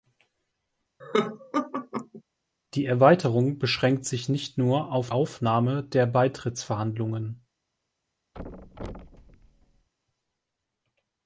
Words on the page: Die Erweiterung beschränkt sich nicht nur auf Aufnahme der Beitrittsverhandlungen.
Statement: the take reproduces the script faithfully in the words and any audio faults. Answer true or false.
false